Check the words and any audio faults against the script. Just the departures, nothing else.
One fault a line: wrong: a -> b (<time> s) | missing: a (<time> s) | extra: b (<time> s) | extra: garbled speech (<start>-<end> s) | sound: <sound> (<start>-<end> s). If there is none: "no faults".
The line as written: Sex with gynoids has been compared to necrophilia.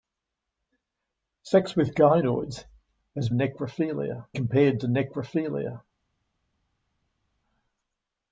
wrong: been -> necrophilia (3.3 s)